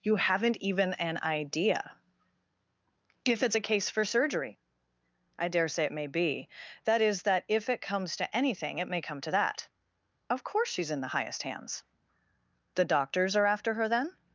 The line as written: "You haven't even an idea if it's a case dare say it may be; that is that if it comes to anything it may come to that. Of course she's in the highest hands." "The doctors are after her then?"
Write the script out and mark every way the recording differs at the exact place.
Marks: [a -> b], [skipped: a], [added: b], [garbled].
"You haven't even an idea if it's a case [added: for surgery I] dare say it may be; that is that if it comes to anything it may come to that. Of course she's in the highest hands." "The doctors are after her then?"